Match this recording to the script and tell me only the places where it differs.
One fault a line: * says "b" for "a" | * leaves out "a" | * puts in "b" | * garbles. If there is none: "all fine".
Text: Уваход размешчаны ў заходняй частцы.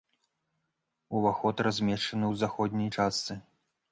all fine